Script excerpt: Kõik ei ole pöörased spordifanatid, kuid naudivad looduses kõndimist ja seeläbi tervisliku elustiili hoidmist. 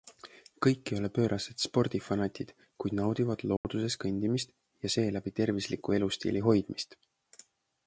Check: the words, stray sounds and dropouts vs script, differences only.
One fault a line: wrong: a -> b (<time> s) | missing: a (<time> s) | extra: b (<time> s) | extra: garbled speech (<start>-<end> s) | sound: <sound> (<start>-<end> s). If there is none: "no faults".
sound: dropout (3.6-3.6 s)